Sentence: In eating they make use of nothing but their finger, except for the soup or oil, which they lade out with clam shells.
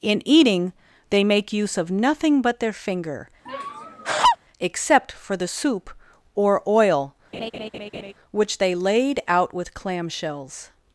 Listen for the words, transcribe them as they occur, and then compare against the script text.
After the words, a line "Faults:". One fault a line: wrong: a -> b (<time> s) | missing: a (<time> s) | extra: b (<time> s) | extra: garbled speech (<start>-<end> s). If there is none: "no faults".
In eating they make use of nothing but their finger, except for the soup or oil, which they lade out with clam shells.
Faults:
no faults